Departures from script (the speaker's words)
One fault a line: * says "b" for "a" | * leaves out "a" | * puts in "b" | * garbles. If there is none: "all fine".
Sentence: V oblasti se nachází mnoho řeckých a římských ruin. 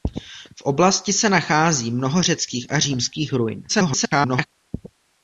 * garbles